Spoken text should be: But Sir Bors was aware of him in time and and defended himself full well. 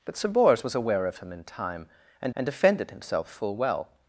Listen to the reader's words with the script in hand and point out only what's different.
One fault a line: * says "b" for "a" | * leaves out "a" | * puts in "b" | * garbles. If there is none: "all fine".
all fine